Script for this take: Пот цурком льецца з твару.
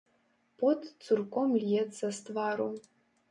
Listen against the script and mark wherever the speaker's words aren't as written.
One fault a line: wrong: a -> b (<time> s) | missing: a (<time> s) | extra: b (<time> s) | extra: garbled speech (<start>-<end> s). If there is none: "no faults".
no faults